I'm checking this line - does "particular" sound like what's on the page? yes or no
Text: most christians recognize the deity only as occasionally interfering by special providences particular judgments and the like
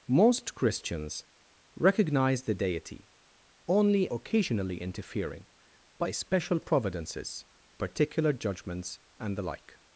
yes